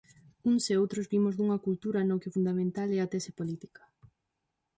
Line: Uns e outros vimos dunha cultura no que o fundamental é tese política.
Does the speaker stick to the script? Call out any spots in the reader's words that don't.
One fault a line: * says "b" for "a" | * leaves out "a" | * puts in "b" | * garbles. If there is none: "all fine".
* puts in "a"